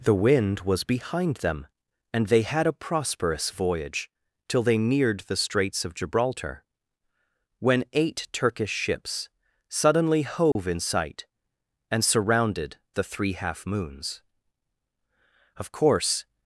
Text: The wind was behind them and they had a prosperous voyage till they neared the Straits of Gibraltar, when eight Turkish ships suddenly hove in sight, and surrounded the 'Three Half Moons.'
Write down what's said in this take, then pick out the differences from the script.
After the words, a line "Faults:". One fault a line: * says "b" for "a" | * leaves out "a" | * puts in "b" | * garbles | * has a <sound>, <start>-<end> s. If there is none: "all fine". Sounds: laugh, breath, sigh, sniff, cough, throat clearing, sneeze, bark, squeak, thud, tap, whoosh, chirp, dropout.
The wind was behind them and they had a prosperous voyage till they neared the Straits of Gibraltar, when eight Turkish ships suddenly hove in sight, and surrounded the 'Three Half Moons.' Of course
Faults:
* has a dropout, 10.5-10.6 s
* puts in "Of course"